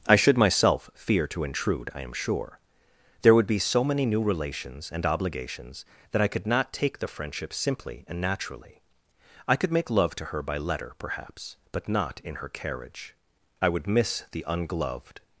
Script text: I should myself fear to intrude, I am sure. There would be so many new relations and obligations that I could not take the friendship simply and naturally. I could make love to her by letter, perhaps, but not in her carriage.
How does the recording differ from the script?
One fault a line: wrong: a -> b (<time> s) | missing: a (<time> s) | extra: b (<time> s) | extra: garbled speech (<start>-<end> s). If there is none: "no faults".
extra: I would miss the ungloved (13.6 s)